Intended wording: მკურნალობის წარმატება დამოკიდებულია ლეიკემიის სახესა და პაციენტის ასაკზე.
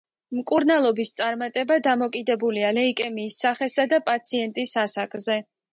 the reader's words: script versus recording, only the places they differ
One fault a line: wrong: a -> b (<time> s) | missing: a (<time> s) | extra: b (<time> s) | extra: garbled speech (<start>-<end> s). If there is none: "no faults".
no faults